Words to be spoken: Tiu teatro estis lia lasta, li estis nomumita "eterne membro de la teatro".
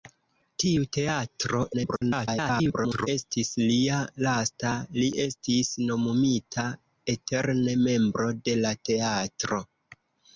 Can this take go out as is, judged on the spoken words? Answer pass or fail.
fail